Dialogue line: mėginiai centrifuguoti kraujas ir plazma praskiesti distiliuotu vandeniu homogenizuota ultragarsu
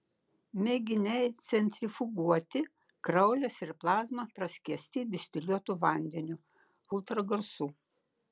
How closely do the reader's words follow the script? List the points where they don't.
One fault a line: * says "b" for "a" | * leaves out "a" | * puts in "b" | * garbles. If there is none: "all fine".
* leaves out "homogenizuota"